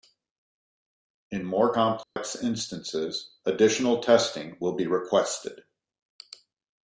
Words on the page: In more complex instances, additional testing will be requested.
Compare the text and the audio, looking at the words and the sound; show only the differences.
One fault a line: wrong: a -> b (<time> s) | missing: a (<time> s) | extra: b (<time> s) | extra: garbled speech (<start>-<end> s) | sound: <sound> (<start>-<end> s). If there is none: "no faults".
sound: dropout (2.0-2.2 s)